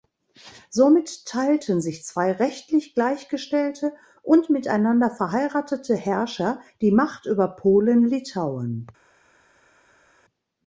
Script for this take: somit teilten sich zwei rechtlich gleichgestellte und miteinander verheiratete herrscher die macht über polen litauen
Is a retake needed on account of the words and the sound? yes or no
no